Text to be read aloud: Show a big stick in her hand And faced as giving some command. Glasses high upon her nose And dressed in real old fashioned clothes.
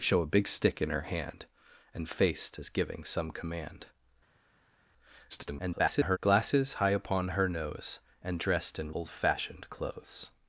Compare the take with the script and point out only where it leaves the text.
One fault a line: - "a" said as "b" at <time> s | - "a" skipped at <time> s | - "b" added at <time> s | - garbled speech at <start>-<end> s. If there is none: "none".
- garbled speech at 5.3-6.2 s
- "real" skipped at 8.9 s